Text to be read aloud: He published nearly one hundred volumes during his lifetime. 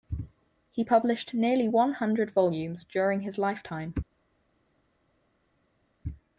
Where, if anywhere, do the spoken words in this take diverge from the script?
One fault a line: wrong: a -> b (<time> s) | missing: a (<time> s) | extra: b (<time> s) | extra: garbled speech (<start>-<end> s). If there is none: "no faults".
no faults